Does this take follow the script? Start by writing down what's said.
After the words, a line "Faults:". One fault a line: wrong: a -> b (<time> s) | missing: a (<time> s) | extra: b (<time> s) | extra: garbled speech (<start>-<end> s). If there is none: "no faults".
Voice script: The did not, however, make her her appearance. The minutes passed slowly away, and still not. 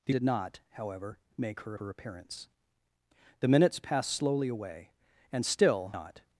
The did not, however, make her her appearance. The minutes passed slowly away, and still not.
Faults:
no faults